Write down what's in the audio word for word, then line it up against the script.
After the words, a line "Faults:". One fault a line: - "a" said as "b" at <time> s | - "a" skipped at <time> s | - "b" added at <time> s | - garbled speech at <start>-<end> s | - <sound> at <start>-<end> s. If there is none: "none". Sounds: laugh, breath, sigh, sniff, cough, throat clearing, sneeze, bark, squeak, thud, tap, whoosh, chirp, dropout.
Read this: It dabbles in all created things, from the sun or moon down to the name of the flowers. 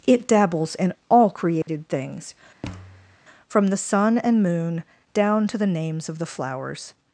It dabbles in all created things, from the sun and moon down to the names of the flowers.
Faults:
- dropout at 1.6-1.7 s
- thud at 2.6-3.2 s
- "or" said as "and" at 4.2 s
- "name" said as "names" at 5.7 s